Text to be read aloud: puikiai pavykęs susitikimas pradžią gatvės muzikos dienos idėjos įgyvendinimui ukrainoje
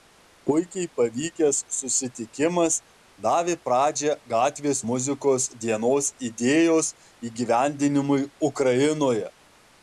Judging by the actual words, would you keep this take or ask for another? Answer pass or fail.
fail